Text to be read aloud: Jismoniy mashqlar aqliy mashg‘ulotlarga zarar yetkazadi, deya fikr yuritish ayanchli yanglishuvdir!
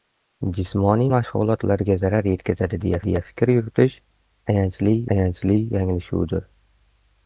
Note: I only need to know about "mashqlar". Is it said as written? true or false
false